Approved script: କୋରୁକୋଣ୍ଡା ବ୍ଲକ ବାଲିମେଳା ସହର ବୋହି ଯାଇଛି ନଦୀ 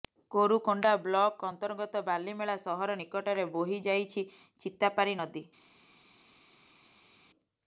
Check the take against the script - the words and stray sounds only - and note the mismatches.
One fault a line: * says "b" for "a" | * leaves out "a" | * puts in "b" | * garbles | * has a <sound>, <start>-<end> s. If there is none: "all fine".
* puts in "ଅନ୍ତର୍ଗତ"
* puts in "ନିକଟରେ"
* puts in "ଚିତାପାରୀ"